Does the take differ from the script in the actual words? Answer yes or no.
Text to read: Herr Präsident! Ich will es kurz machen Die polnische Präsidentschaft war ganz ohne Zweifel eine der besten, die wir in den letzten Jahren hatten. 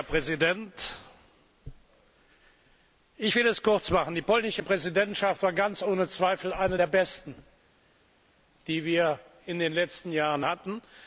no